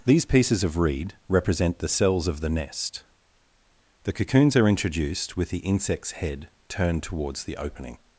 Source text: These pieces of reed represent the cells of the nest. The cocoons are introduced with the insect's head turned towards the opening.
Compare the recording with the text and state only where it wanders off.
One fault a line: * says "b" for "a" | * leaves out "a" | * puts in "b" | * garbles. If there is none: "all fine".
all fine